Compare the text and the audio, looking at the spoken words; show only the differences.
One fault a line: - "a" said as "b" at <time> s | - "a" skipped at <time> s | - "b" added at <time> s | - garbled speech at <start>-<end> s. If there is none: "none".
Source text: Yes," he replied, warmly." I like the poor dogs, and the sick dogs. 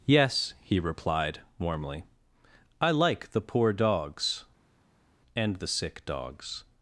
none